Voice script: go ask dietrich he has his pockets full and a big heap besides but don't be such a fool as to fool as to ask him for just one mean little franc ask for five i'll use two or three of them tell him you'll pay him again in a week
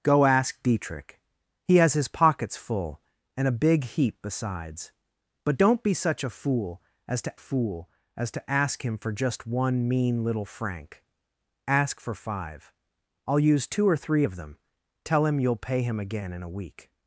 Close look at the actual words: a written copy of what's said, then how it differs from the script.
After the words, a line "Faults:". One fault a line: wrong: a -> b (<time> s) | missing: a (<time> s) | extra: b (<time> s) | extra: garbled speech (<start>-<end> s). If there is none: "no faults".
go ask dietrich he has his pockets full and a big heap besides but don't be such a fool as to fool as to ask him for just one mean little franc ask for five i'll use two or three of them tell him you'll pay him again in a week
Faults:
no faults